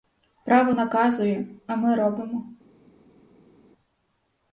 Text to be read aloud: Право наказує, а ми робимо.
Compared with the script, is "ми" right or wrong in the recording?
right